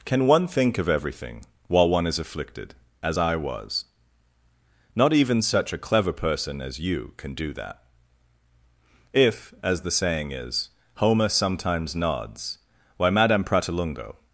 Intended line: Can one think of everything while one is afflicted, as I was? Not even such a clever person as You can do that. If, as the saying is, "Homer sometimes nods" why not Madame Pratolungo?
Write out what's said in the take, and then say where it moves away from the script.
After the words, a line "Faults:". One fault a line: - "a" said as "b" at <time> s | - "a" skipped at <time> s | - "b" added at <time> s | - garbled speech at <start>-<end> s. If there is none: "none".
Can one think of everything while one is afflicted, as I was? Not even such a clever person as You can do that. If, as the saying is, "Homer sometimes nods" why Madame Pratolungo?
Faults:
- "not" skipped at 13.1 s